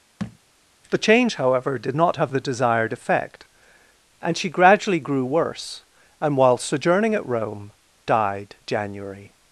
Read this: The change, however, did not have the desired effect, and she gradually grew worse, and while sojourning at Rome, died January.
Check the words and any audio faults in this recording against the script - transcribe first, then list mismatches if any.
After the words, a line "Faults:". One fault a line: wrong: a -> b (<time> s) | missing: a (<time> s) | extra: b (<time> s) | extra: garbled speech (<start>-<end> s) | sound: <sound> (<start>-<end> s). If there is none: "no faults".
The change, however, did not have the desired effect, and she gradually grew worse, and while sojourning at Rome, died January.
Faults:
sound: thud (0.2-0.4 s)